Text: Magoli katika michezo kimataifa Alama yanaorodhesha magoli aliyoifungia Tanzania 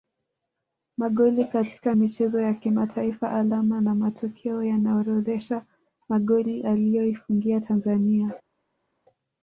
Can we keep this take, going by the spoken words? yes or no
no